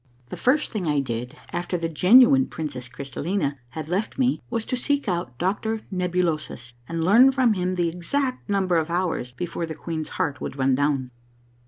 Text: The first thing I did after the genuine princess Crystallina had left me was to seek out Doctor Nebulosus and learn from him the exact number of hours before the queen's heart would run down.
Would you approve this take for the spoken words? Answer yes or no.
yes